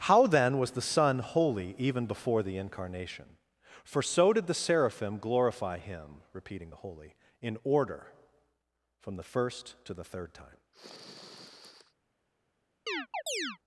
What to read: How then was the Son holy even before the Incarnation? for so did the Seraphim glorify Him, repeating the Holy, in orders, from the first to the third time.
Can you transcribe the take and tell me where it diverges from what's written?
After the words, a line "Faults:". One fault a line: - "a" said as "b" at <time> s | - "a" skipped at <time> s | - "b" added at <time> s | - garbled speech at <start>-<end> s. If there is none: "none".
How then was the Son holy even before the Incarnation? for so did the Seraphim glorify Him, repeating the Holy, in order, from the first to the third time.
Faults:
- "orders" said as "order" at 7.6 s